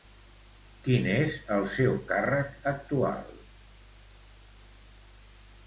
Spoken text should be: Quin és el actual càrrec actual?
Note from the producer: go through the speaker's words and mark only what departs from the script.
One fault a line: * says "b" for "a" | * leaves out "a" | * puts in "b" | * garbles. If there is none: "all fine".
* says "seu" for "actual"